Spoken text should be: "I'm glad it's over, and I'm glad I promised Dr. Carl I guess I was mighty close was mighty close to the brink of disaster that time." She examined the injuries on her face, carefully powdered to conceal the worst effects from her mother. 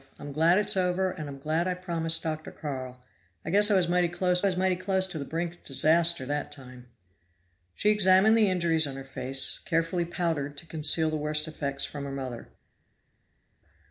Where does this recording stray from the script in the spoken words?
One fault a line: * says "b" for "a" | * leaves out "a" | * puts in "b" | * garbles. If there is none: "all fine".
all fine